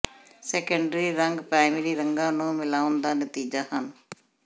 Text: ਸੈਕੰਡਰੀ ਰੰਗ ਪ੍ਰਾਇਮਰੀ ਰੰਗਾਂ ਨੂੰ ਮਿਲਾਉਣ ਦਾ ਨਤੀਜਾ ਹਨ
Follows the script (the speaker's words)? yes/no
yes